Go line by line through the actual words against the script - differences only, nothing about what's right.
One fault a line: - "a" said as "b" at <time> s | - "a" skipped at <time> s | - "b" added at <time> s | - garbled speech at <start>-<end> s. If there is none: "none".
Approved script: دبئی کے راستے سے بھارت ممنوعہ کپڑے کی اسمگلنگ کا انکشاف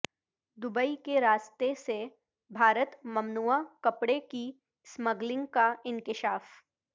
none